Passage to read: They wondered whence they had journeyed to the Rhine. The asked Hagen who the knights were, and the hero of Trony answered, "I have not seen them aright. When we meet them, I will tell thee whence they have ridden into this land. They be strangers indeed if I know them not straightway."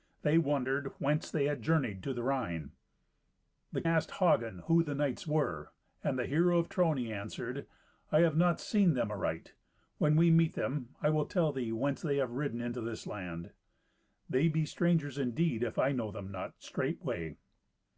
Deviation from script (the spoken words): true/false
false